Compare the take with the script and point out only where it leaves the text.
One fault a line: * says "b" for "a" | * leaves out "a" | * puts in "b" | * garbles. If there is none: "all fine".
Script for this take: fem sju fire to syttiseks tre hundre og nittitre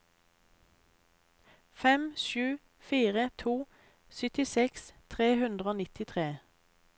all fine